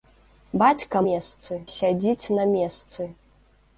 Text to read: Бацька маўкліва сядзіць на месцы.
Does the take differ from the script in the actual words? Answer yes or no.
yes